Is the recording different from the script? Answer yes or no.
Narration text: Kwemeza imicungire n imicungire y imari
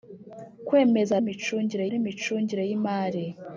no